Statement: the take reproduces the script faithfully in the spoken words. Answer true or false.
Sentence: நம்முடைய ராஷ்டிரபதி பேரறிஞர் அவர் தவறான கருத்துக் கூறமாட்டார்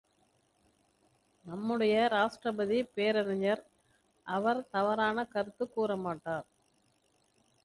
true